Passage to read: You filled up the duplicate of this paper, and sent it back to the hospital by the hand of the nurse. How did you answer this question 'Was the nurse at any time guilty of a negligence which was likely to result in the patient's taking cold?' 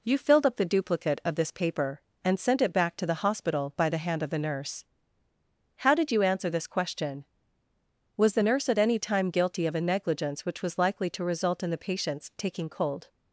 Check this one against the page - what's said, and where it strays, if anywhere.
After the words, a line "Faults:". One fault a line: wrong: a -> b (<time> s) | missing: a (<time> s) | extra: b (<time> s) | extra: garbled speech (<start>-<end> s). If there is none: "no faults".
You filled up the duplicate of this paper, and sent it back to the hospital by the hand of the nurse. How did you answer this question 'Was the nurse at any time guilty of a negligence which was likely to result in the patient's taking cold?'
Faults:
no faults